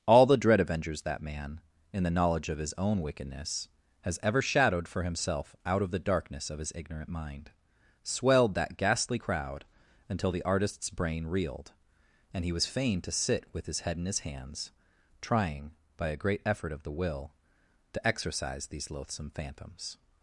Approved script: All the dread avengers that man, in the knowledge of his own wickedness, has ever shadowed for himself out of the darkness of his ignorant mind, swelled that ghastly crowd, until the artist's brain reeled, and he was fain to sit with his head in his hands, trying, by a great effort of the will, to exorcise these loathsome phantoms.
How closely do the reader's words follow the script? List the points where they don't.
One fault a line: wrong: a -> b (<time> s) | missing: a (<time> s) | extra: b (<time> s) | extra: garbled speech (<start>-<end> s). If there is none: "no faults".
no faults